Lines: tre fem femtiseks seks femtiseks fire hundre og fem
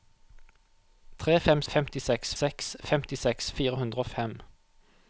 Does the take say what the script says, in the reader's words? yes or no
yes